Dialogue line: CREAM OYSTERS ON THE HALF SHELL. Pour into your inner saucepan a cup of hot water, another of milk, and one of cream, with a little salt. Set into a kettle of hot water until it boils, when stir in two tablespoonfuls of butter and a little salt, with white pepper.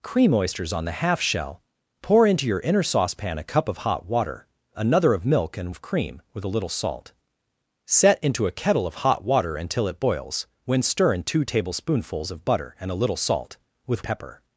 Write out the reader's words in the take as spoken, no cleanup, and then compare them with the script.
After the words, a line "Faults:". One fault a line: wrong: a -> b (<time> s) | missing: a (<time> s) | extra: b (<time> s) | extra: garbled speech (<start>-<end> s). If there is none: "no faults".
CREAM OYSTERS ON THE HALF SHELL. Pour into your inner saucepan a cup of hot water, another of milk, and of cream, with a little salt. Set into a kettle of hot water until it boils, when stir in two tablespoonfuls of butter and a little salt, with pepper.
Faults:
missing: one (5.8 s)
missing: white (14.0 s)